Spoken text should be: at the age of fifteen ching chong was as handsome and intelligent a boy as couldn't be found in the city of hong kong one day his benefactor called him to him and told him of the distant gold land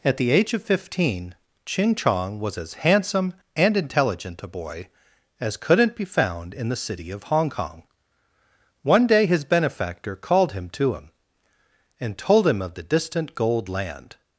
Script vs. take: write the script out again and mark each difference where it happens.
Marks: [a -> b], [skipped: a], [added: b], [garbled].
at the age of fifteen ching chong was as handsome and intelligent a boy as couldn't be found in the city of hong kong one day his benefactor called him to him and told him of the distant gold land